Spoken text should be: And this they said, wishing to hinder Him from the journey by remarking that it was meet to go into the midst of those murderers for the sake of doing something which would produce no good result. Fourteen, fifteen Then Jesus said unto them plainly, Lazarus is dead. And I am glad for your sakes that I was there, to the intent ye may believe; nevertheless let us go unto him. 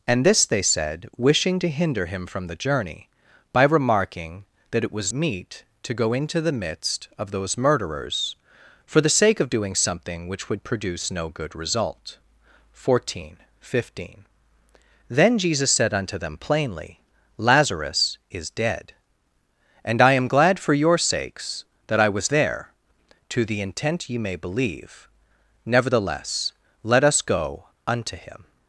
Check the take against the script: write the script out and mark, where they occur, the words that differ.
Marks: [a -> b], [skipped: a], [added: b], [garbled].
And this they said, wishing to hinder Him from the journey by remarking that it was meet to go into the midst of those murderers for the sake of doing something which would produce no good result. Fourteen, fifteen Then Jesus said unto them plainly, Lazarus is dead. And I am glad for your sakes that I was there, to the intent ye may believe; nevertheless let us go unto him.